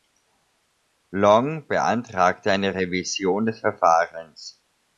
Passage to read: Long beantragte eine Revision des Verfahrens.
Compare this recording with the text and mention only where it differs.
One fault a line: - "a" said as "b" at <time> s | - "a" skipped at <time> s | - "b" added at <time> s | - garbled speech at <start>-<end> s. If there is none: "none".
none